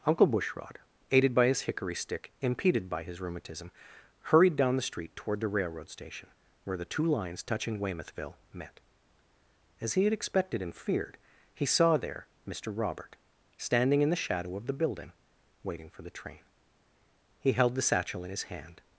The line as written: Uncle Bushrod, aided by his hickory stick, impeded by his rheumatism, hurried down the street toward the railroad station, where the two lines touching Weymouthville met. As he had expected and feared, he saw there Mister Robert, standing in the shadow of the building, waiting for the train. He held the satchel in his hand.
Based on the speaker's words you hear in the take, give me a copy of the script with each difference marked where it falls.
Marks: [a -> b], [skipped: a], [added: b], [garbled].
Uncle Bushrod, aided by his hickory stick, impeded by his rheumatism, hurried down the street toward the railroad station, where the two lines touching Weymouthville met. As he had expected and feared, he saw there Mister Robert, standing in the shadow of the building, waiting for the train. He held the satchel in his hand.